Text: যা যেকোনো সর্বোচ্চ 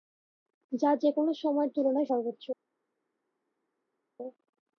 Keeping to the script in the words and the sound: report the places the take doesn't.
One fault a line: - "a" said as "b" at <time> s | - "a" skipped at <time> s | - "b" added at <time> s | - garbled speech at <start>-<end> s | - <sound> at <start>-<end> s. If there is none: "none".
- "সময়ের তুলনায়" added at 1.3 s